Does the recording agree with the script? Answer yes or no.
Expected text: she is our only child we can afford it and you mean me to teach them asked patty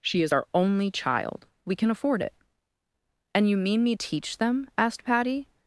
no